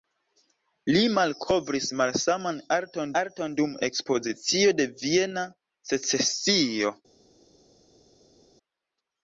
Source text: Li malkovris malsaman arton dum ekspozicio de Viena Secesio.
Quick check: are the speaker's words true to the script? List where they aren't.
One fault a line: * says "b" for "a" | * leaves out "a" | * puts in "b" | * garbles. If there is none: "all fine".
* puts in "arton"